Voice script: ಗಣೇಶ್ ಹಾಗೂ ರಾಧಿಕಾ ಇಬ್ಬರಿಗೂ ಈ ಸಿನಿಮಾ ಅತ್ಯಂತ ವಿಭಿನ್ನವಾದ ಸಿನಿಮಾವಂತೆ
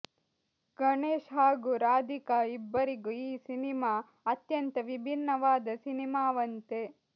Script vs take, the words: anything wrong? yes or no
no